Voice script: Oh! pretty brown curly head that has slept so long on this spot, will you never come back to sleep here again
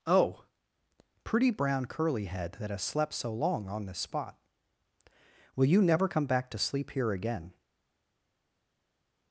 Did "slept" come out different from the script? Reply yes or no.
no